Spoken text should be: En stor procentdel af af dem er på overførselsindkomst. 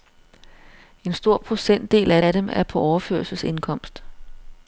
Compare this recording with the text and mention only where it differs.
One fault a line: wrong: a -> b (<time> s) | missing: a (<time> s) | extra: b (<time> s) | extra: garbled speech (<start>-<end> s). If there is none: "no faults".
no faults